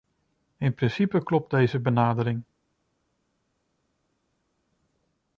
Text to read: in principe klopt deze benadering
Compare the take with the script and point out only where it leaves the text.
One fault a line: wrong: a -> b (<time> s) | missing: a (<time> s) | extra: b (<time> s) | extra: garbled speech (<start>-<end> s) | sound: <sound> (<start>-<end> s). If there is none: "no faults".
no faults